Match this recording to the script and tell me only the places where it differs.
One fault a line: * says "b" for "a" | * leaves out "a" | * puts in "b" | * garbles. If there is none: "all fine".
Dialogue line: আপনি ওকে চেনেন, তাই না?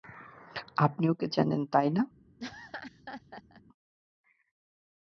all fine